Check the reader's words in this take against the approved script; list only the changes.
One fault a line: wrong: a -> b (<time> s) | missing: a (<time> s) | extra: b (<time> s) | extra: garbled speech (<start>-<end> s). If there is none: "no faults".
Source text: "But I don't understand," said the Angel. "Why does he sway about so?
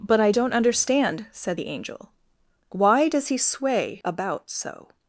no faults